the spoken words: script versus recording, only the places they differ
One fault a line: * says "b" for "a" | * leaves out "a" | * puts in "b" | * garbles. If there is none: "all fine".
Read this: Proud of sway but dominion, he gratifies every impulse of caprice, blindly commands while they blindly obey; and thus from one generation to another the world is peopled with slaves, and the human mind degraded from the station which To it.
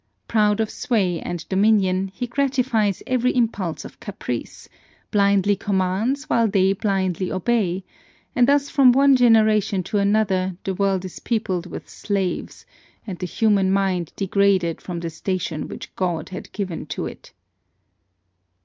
* says "and" for "but"
* puts in "God had given"